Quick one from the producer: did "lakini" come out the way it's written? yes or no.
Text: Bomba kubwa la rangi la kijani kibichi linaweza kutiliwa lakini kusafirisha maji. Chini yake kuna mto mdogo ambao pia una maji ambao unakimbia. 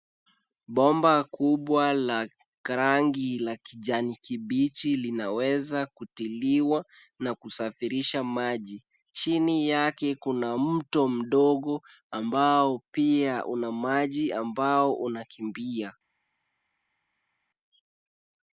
no